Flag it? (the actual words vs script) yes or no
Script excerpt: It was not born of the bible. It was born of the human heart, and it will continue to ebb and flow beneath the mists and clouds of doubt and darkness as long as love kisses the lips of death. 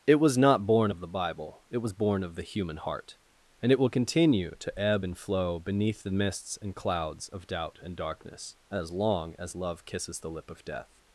yes